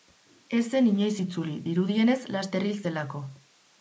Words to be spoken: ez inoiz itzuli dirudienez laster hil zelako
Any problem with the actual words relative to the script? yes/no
yes